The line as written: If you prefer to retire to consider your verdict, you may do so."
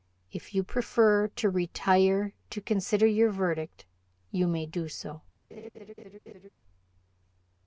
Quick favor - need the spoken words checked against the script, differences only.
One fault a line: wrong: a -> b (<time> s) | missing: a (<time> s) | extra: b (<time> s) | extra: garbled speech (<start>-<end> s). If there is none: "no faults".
no faults